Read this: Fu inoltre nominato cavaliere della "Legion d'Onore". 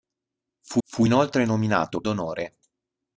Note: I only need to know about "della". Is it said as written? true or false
false